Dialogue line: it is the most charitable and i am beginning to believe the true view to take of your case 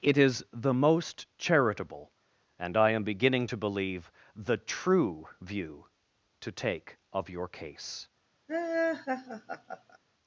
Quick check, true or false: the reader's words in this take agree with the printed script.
true